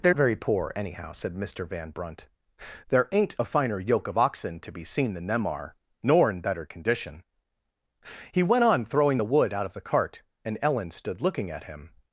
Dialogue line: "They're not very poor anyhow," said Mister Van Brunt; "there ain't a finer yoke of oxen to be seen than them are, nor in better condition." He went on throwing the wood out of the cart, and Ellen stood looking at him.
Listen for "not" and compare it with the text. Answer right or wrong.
wrong